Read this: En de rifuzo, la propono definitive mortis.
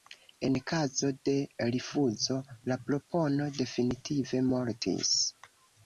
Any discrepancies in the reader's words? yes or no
yes